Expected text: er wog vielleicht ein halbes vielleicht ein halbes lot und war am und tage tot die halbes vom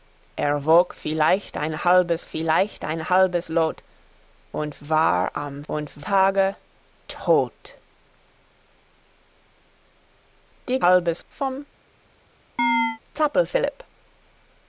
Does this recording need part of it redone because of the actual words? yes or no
no